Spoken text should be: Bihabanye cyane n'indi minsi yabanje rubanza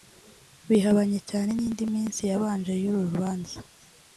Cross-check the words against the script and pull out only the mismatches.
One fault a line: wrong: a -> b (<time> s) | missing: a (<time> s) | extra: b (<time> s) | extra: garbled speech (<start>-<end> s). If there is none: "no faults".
extra: y'uru (2.8 s)